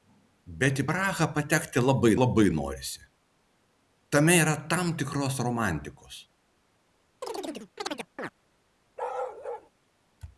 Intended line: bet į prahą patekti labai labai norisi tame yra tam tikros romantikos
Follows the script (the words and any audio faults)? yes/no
no